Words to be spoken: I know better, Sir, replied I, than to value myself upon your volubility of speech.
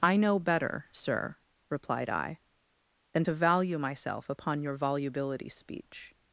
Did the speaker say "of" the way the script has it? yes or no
no